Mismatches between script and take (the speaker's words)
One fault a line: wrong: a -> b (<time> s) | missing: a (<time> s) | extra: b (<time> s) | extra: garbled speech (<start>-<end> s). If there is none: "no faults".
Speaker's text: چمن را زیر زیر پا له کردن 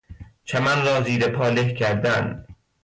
missing: زیر (1.3 s)